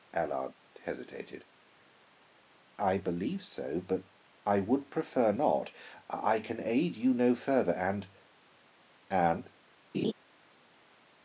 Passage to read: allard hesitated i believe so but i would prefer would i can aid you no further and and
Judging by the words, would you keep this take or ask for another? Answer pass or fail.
fail